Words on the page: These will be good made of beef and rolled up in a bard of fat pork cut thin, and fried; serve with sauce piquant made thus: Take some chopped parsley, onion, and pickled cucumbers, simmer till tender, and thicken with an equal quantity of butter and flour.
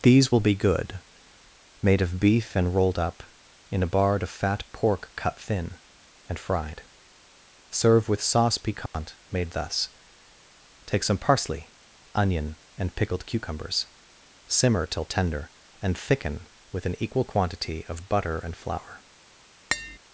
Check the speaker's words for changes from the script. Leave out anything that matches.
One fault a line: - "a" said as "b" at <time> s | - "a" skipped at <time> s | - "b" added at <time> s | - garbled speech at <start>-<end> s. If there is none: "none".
- "chopped" skipped at 11.2 s